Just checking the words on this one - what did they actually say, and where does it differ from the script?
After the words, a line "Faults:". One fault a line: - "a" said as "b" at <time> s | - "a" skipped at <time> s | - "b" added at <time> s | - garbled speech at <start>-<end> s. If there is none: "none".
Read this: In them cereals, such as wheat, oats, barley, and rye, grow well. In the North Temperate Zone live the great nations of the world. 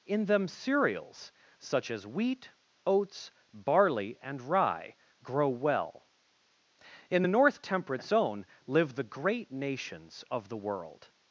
In them cereals, such as wheat, oats, barley, and rye, grow well. In the North Temperate Zone live the great nations of the world.
Faults:
none